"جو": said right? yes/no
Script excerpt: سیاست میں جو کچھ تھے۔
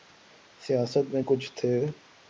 no